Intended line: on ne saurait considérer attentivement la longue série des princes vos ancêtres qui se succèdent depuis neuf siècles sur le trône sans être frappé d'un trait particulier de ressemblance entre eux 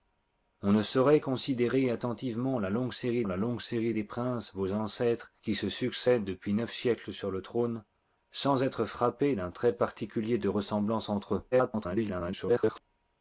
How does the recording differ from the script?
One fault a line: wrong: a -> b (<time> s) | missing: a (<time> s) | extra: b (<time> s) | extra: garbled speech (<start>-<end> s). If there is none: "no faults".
extra: la longue série (3.3 s)
extra: garbled speech (11.5-12.8 s)